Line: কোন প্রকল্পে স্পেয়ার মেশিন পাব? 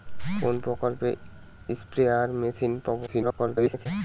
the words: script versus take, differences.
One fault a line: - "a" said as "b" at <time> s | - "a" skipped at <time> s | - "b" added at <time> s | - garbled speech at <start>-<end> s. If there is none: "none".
- garbled speech at 3.1-3.9 s